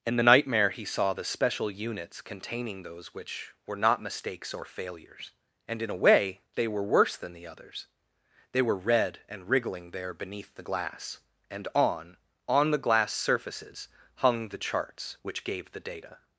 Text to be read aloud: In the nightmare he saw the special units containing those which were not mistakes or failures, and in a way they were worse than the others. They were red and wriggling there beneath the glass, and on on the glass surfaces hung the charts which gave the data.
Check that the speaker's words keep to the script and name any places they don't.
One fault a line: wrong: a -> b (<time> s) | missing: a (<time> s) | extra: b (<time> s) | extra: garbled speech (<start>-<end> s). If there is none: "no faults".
no faults